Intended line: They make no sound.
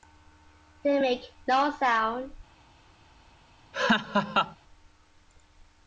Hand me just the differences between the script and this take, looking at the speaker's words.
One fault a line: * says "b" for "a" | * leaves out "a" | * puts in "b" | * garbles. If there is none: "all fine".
all fine